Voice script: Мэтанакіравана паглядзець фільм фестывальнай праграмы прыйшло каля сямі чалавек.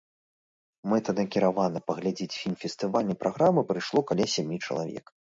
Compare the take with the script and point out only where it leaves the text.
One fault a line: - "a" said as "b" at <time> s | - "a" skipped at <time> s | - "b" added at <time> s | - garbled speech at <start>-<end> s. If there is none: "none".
none